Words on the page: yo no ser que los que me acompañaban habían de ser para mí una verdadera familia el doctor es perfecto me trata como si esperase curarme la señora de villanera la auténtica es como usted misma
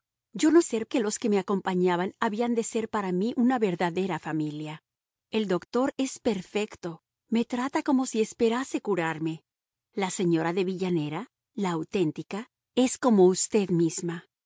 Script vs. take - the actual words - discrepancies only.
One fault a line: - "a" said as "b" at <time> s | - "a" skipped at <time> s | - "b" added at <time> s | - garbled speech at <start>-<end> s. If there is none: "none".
none